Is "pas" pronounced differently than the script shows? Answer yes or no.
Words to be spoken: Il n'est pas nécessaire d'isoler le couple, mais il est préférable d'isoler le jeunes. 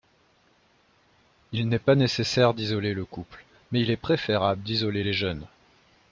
no